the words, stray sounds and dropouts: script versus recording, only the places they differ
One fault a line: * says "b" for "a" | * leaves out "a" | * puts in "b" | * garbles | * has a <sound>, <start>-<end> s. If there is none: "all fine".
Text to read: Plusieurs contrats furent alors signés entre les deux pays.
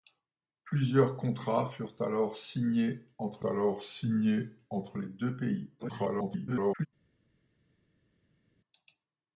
* puts in "alors signés entre"
* garbles